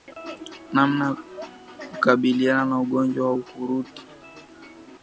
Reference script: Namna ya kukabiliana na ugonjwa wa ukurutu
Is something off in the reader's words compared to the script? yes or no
no